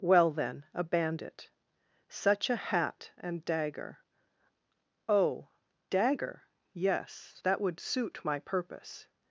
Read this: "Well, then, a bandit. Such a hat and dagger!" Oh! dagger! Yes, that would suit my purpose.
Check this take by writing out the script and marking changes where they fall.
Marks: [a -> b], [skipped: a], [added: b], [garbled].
"Well, then, a bandit. Such a hat and dagger!" Oh! dagger! Yes, that would suit my purpose.